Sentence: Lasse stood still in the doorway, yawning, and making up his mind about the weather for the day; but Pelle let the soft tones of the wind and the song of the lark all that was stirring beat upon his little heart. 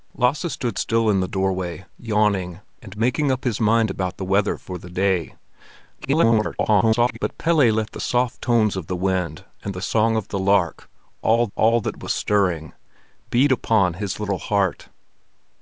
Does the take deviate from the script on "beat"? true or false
false